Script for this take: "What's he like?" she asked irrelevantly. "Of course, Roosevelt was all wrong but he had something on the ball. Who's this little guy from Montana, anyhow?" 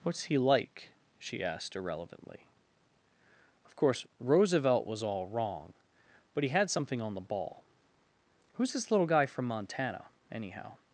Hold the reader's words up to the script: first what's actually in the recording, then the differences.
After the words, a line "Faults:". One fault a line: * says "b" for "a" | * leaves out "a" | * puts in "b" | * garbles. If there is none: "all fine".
"What's he like?" she asked irrelevantly. "Of course, Roosevelt was all wrong but he had something on the ball. Who's this little guy from Montana, anyhow?"
Faults:
all fine